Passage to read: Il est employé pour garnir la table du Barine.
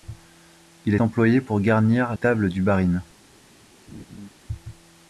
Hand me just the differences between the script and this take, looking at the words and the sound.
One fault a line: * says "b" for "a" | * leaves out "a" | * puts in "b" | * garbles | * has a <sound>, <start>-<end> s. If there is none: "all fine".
* leaves out "est"
* leaves out "la"
* has a laugh, 3.9-4.3 s